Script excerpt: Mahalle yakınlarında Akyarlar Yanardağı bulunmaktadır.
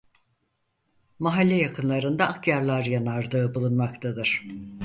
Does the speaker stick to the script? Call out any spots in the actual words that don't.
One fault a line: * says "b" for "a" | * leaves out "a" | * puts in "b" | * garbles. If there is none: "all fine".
all fine